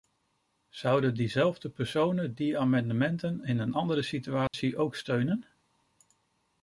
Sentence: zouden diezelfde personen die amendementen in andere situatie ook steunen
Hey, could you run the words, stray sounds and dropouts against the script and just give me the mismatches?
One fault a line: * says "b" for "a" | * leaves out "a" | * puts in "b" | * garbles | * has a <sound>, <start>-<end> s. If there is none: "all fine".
* puts in "een"
* has a dropout, 4.5-4.5 s